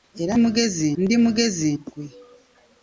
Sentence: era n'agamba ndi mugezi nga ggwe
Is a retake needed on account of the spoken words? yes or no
yes